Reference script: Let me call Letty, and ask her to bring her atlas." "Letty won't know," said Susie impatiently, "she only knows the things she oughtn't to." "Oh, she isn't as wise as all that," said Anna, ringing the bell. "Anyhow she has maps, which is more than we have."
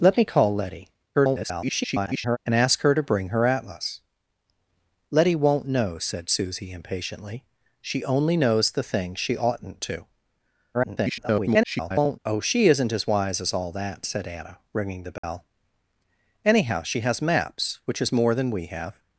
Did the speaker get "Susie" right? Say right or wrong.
right